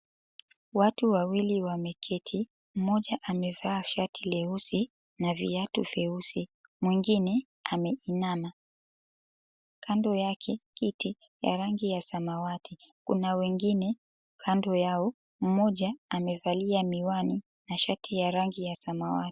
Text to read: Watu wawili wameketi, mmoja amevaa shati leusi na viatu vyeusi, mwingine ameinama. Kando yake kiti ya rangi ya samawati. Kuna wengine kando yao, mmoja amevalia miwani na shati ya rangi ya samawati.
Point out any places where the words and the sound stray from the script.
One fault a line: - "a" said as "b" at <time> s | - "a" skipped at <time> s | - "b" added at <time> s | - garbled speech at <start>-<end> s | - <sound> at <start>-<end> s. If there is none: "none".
none